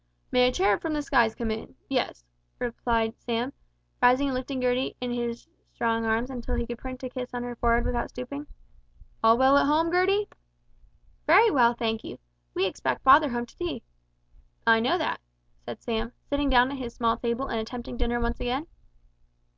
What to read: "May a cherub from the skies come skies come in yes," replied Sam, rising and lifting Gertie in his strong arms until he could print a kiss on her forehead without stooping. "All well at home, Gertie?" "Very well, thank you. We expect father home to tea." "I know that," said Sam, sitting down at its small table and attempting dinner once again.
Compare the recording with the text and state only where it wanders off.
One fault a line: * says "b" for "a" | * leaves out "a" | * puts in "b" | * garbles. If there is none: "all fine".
* leaves out "skies come"
* says "his" for "its"